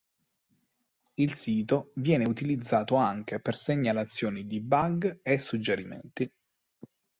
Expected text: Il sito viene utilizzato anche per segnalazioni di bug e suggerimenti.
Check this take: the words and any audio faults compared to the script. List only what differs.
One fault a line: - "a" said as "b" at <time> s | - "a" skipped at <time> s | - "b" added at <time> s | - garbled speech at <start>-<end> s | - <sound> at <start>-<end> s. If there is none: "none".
none